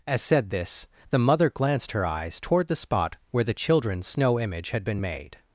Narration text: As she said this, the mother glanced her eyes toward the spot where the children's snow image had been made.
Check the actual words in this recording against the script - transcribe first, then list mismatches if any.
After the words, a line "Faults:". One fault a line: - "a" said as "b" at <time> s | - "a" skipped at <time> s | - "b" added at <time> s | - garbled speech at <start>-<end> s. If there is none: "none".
As said this, the mother glanced her eyes toward the spot where the children's snow image had been made.
Faults:
- "she" skipped at 0.2 s